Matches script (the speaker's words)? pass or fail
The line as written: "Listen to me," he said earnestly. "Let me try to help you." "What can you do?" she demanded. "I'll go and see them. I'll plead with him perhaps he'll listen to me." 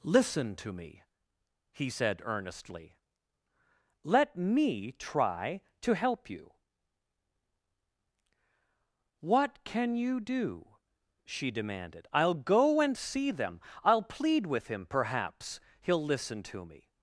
pass